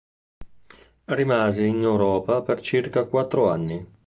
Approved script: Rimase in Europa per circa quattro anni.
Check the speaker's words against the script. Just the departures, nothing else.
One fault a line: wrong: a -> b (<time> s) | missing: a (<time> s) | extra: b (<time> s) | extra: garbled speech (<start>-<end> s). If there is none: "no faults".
no faults